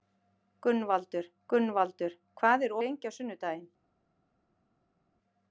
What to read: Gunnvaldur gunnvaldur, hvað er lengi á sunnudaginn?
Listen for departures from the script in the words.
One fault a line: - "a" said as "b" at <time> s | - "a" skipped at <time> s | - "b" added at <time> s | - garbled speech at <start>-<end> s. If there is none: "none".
none